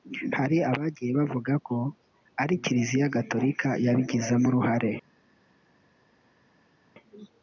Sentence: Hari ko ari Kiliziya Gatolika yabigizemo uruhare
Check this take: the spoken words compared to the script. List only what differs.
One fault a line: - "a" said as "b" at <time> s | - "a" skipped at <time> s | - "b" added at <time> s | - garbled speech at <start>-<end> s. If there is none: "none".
- "abagiye bavuga" added at 0.7 s